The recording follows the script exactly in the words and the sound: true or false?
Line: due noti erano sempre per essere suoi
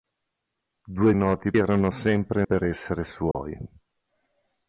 false